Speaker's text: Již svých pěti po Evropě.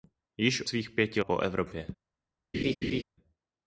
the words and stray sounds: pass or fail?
fail